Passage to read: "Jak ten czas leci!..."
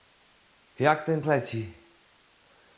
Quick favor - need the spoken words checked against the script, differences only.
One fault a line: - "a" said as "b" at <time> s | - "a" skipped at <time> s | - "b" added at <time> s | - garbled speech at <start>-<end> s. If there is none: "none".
- "czas" skipped at 1.2 s